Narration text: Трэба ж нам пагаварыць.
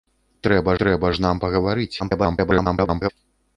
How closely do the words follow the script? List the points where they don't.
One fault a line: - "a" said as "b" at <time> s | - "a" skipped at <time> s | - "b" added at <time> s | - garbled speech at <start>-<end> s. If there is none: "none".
- "трэба" added at 0.8 s
- garbled speech at 2.0-3.1 s